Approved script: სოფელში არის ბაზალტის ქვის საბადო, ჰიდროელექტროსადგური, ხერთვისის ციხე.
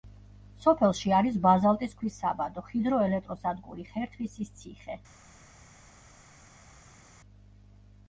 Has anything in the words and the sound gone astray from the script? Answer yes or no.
no